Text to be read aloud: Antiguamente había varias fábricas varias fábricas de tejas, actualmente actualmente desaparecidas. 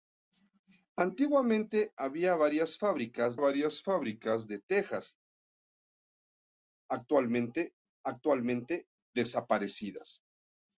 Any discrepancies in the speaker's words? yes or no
no